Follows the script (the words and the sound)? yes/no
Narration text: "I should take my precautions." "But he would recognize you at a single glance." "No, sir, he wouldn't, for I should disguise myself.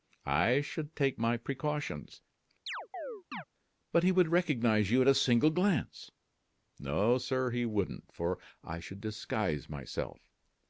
no